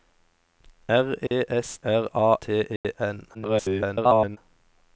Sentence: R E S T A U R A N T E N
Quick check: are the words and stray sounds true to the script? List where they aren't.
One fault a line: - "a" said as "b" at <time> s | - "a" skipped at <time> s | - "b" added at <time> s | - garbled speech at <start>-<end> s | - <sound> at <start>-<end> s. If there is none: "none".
- dropout at 1.3-1.3 s
- "T A U" skipped at 1.8 s
- "N" skipped at 2.4 s
- dropout at 2.8-2.8 s
- garbled speech at 3.3-4.4 s